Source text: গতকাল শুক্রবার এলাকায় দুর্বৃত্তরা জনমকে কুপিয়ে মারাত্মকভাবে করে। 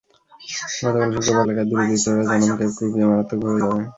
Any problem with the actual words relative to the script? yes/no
no